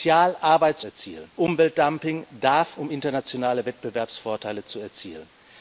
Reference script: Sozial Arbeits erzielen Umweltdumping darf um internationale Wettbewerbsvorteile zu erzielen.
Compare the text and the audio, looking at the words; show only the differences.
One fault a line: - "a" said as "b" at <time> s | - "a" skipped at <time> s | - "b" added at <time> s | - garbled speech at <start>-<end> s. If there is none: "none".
none